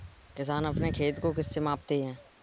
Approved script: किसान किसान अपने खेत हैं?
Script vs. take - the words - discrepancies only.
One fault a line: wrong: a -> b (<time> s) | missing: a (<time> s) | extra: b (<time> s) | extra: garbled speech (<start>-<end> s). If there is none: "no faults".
missing: किसान (0.7 s)
extra: को किससे मापते (1.2 s)